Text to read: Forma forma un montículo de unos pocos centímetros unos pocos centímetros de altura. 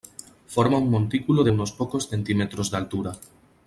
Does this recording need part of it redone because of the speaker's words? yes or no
yes